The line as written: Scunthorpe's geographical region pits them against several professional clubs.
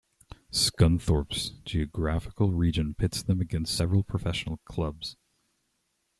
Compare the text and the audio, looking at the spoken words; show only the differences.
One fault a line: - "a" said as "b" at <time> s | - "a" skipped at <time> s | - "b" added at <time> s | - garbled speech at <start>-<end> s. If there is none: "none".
none